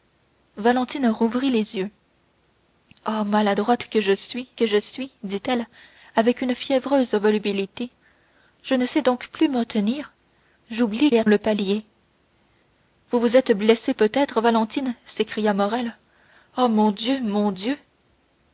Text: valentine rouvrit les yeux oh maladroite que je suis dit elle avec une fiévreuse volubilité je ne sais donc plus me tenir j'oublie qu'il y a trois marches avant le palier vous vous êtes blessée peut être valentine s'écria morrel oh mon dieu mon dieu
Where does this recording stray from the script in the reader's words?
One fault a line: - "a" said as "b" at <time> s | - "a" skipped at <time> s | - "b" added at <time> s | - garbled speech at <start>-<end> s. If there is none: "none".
- "que je suis" added at 4.5 s
- "qu'il" skipped at 11.1 s
- "trois marches avant" skipped at 11.2 s